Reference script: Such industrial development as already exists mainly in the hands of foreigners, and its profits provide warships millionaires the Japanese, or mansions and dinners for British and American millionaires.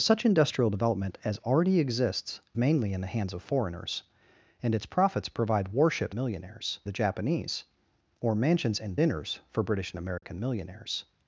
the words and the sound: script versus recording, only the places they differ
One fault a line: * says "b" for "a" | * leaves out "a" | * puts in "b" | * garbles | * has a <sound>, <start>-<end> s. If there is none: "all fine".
* has a dropout, 10.2-10.2 s